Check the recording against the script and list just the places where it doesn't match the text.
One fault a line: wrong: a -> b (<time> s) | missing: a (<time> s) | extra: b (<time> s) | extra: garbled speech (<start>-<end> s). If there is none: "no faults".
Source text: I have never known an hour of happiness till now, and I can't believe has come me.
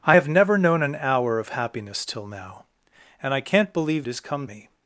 no faults